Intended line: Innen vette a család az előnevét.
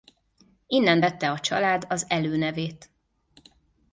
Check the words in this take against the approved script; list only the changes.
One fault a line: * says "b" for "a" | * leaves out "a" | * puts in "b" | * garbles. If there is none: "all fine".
all fine